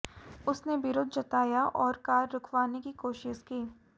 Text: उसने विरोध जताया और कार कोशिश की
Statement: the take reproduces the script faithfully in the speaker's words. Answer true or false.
false